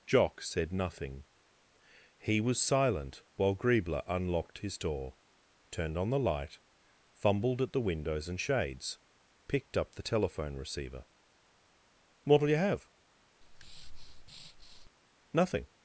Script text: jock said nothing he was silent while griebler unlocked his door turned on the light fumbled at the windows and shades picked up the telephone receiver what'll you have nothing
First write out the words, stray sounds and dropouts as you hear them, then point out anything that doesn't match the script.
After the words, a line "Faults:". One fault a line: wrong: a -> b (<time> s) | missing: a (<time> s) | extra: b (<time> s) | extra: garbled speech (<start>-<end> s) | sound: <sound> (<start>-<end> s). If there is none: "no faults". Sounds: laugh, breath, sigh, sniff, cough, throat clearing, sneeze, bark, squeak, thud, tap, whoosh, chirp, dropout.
jock said nothing he was silent while griebler unlocked his door turned on the light fumbled at the windows and shades picked up the telephone receiver what'll you have nothing
Faults:
sound: breath (13.4-14.9 s)